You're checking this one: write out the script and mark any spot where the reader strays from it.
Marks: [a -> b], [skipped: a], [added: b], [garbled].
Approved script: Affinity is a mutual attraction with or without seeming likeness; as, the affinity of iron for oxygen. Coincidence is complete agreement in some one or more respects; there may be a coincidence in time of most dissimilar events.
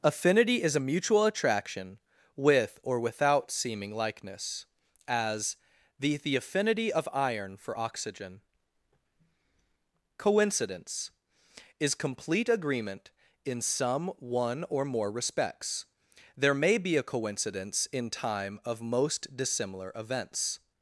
Affinity is a mutual attraction with or without seeming likeness; as, the [added: the] affinity of iron for oxygen. Coincidence is complete agreement in some one or more respects; there may be a coincidence in time of most dissimilar events.